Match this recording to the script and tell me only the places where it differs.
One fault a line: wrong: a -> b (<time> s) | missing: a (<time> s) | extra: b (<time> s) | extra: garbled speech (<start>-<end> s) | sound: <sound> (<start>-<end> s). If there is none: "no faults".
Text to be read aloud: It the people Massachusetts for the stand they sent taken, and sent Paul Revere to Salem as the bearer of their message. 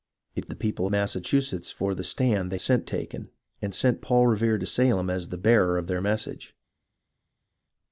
no faults